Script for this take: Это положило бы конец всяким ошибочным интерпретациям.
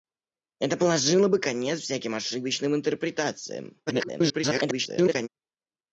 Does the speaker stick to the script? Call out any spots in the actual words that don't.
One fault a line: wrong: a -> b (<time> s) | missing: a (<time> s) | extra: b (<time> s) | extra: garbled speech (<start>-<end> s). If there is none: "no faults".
extra: garbled speech (3.9-5.3 s)